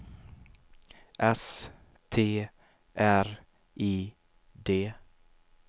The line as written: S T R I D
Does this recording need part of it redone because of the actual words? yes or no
no